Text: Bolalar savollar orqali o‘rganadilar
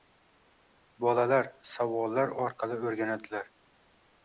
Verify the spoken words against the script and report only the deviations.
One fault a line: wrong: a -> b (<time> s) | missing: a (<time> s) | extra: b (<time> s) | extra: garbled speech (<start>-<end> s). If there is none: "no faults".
no faults